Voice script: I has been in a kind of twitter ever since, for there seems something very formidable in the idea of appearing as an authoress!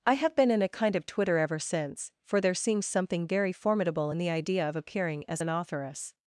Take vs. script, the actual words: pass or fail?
fail